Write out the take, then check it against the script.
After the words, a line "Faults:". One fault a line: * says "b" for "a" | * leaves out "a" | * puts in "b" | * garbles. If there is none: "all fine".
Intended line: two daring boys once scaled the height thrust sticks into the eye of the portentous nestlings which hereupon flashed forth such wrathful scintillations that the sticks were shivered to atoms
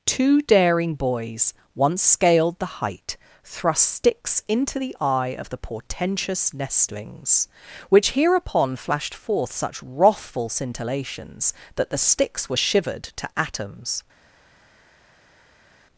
two daring boys once scaled the height thrust sticks into the eye of the portentous nestlings which hereupon flashed forth such wrathful scintillations that the sticks were shivered to atoms
Faults:
all fine